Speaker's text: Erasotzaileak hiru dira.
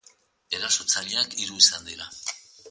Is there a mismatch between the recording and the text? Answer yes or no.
yes